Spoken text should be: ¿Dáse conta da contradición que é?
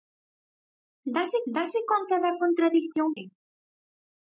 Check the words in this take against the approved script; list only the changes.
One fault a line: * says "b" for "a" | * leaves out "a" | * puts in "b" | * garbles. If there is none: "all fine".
* puts in "dáse"
* leaves out "que"